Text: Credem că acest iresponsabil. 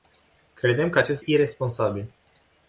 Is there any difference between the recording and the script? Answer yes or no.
no